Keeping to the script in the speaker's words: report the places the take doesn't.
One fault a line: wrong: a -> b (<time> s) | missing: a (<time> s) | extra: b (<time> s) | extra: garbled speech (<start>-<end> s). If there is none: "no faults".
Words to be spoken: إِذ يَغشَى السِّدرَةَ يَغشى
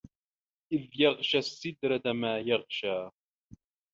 extra: ما (2.1 s)